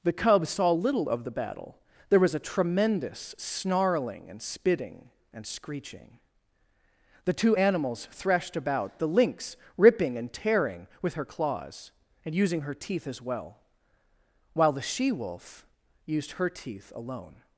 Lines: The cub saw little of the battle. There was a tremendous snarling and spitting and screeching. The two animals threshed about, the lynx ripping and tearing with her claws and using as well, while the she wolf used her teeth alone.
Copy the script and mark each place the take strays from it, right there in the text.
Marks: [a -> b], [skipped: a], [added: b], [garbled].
The cub saw little of the battle. There was a tremendous snarling and spitting and screeching. The two animals threshed about, the lynx ripping and tearing with her claws and using [added: her teeth] as well, while the she wolf used her teeth alone.